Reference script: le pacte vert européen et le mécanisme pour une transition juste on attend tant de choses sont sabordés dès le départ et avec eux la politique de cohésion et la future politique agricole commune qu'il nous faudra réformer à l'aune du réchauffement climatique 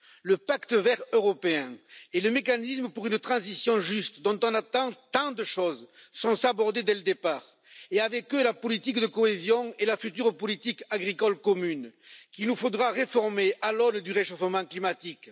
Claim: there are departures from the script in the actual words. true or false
true